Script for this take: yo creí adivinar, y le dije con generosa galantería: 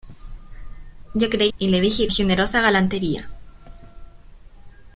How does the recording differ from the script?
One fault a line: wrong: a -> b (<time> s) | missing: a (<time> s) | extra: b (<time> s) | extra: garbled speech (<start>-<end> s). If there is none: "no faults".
missing: adivinar (1.5 s)
missing: con (2.1 s)